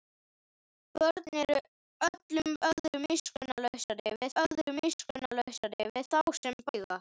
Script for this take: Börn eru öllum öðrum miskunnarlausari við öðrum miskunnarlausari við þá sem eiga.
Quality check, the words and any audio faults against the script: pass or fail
fail